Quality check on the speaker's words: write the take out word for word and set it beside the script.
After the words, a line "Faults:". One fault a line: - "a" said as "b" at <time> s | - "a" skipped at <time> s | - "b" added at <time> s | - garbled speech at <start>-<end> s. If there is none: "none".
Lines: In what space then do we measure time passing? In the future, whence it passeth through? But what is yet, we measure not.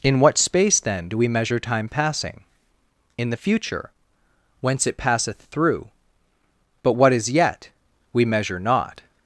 In what space then do we measure time passing? In the future, whence it passeth through? But what is yet, we measure not.
Faults:
none